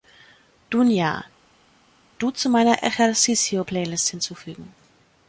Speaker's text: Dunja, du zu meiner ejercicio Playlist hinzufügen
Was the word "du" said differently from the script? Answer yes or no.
no